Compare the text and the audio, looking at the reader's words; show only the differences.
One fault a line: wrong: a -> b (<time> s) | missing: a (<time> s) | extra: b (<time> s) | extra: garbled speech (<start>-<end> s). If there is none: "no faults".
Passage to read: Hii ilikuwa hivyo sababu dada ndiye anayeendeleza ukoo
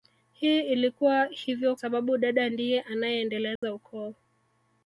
no faults